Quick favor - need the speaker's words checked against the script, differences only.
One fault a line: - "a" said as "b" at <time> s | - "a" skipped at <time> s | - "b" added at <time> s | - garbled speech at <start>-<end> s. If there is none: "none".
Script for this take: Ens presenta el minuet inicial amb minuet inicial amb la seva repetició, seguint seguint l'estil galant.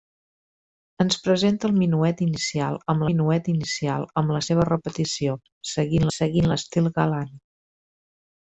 none